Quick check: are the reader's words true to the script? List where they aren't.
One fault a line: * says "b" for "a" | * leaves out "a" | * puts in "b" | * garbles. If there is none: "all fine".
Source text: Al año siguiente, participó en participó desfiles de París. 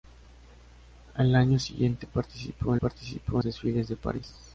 all fine